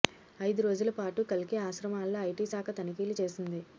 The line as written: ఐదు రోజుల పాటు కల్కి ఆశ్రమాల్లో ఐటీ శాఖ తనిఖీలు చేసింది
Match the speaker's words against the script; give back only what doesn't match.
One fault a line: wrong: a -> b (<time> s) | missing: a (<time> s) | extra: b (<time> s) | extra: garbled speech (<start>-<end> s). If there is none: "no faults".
no faults